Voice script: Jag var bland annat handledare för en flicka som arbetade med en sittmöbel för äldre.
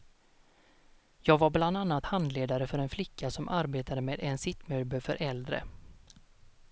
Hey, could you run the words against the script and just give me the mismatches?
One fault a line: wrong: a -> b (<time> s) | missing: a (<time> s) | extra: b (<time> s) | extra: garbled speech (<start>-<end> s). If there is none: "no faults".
no faults